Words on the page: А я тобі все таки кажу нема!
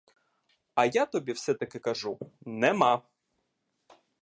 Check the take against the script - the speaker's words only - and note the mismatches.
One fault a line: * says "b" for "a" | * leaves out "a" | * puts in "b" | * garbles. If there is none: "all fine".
all fine